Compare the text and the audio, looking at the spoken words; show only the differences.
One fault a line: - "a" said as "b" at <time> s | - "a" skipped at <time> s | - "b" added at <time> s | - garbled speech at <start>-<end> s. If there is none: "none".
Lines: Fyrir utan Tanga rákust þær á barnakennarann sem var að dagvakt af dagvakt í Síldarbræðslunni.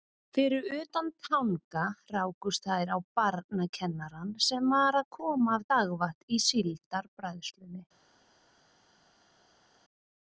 - "dagvakt" said as "koma" at 5.2 s